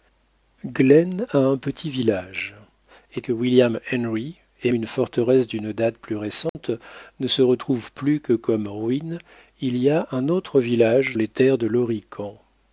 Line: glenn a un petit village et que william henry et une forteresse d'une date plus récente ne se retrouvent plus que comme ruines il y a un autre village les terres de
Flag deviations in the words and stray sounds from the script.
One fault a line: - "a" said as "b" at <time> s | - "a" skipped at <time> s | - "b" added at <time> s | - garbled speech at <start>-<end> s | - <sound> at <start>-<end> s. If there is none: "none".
- dropout at 6.5-6.5 s